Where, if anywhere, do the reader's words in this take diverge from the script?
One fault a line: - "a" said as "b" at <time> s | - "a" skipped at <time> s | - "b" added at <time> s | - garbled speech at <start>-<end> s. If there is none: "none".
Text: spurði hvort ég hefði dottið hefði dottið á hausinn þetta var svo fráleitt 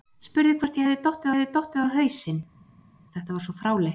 none